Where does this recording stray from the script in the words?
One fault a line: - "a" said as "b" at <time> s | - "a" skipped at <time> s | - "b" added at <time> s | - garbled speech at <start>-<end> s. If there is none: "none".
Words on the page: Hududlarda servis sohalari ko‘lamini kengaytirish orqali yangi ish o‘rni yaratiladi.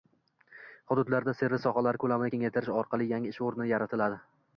none